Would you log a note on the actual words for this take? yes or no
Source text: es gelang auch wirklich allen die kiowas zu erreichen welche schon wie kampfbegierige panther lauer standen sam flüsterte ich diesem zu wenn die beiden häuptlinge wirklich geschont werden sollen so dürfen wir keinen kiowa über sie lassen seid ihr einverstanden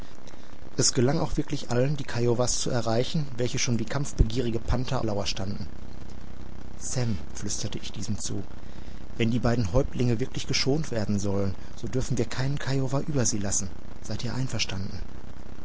no